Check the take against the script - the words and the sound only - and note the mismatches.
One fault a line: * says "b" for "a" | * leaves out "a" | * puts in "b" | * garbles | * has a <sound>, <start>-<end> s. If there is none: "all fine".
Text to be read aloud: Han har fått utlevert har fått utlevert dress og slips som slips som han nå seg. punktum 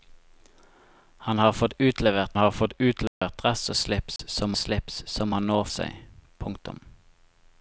* has a dropout, 3.1-3.2 s
* has a dropout, 4.2-4.2 s